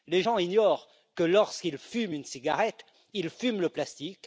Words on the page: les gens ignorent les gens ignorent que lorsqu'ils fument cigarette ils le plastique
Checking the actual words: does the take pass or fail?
fail